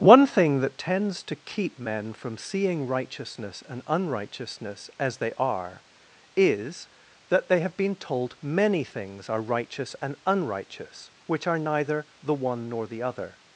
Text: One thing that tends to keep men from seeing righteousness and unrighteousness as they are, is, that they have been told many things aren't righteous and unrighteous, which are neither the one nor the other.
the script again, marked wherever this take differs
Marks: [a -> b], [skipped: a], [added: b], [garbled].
One thing that tends to keep men from seeing righteousness and unrighteousness as they are, is, that they have been told many things [aren't -> are] righteous and unrighteous, which are neither the one nor the other.